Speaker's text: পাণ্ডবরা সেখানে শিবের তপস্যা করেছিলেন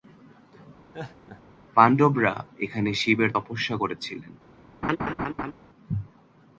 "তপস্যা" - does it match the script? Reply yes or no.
yes